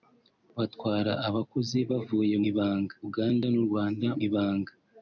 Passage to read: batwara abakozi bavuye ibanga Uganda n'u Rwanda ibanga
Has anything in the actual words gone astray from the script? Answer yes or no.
no